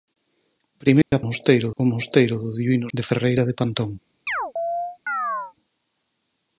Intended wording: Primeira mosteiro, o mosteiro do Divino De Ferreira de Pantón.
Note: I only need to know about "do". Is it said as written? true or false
true